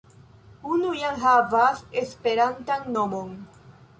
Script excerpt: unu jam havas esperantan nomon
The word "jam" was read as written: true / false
true